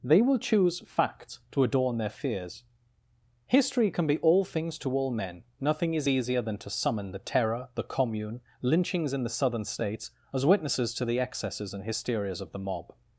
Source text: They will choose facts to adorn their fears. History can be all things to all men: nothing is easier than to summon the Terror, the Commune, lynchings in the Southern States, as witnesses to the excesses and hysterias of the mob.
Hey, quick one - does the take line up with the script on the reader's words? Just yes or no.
yes